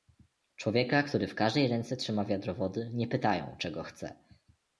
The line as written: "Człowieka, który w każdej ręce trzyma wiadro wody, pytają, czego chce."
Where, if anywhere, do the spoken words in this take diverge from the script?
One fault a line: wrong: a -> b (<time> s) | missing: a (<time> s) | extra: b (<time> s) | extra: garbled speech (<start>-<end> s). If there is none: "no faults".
extra: nie (2.9 s)